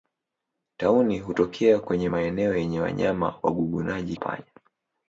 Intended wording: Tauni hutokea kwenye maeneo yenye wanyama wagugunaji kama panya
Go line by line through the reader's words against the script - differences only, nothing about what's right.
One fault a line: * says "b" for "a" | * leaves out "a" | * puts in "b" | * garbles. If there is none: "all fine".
* leaves out "kama"